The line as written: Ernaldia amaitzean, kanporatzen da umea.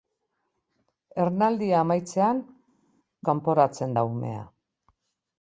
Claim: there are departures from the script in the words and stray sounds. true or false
false